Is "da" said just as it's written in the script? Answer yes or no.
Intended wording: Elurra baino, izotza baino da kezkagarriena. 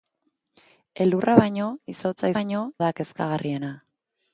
yes